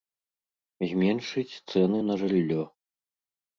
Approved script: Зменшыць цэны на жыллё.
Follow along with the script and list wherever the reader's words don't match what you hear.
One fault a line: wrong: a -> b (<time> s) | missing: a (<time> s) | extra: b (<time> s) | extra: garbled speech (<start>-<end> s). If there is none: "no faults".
no faults